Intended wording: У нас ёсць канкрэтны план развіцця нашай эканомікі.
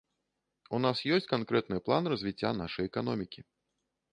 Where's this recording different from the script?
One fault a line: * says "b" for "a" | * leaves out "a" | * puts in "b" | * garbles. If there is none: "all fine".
all fine